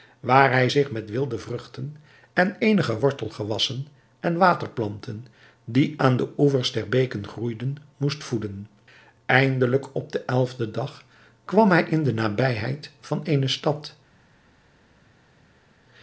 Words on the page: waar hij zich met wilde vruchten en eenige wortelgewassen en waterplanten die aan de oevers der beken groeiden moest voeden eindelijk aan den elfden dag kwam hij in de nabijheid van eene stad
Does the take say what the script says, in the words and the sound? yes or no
no